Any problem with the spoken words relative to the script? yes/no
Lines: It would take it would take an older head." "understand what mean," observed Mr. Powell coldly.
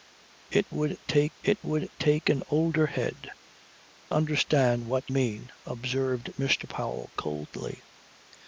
no